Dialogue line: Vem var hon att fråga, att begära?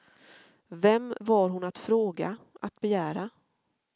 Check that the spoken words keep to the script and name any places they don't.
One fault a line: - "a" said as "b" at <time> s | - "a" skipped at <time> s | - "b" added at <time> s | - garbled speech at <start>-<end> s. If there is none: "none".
none